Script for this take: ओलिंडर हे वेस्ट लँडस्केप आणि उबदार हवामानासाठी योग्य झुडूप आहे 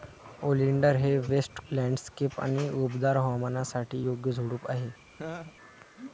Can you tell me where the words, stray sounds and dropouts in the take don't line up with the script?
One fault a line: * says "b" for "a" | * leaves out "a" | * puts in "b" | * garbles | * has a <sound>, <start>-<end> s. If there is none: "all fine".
* has a laugh, 5.1-5.6 s